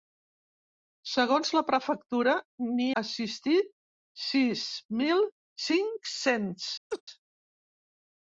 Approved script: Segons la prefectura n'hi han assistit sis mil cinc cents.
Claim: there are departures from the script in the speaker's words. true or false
true